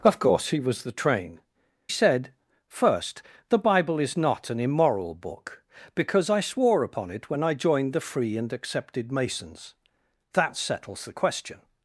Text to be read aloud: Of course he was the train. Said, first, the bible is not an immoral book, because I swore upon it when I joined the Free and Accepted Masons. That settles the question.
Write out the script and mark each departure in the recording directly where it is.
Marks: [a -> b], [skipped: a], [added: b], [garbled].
Of course he was the train. Said, first, the bible is not an immoral book, because I swore upon it when I joined the Free and Accepted Masons. That settles the question.